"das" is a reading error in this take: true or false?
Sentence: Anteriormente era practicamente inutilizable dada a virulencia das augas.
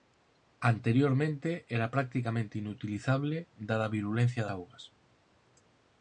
true